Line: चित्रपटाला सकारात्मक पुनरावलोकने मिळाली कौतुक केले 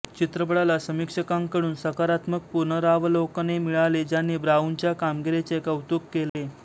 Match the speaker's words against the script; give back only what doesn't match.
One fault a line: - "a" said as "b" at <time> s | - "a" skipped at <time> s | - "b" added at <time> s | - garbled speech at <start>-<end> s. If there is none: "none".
- "समीक्षकांकडून" added at 0.8 s
- "ज्यांनी ब्राऊनच्या कामगिरीचे" added at 4.0 s